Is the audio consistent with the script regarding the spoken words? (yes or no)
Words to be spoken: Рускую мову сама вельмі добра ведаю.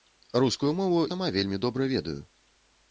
yes